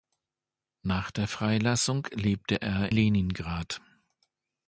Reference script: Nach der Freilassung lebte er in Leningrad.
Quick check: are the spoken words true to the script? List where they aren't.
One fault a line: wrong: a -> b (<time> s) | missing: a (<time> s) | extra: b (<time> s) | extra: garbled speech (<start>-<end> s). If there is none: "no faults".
missing: in (2.9 s)